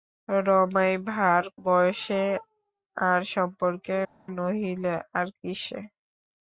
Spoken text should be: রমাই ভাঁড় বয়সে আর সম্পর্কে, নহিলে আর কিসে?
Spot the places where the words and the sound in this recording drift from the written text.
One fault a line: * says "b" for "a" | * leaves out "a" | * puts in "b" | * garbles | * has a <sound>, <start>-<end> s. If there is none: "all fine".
all fine